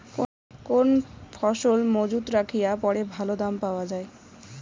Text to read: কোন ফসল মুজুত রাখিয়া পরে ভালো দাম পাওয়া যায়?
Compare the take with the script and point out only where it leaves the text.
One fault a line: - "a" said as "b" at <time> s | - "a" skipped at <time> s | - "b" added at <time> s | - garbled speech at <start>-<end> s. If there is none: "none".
none